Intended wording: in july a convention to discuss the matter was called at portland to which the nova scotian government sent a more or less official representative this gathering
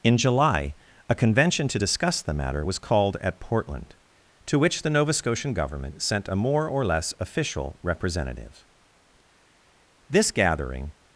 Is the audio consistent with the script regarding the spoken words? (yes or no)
yes